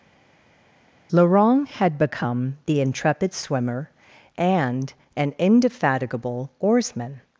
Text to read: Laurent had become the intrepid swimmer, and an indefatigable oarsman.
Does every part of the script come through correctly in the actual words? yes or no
yes